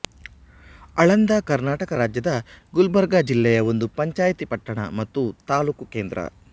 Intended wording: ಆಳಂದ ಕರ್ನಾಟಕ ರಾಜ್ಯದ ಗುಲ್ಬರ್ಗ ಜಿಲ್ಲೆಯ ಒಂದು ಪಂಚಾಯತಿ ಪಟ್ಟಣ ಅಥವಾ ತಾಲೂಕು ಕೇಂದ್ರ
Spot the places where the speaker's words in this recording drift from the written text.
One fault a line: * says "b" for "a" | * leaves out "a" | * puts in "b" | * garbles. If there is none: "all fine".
* says "ಮತ್ತು" for "ಅಥವಾ"